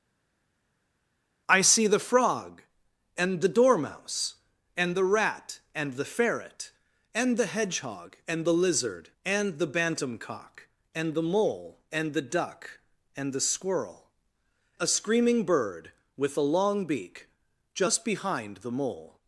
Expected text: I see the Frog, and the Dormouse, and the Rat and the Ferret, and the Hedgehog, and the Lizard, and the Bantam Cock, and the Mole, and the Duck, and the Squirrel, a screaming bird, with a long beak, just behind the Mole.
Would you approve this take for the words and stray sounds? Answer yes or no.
yes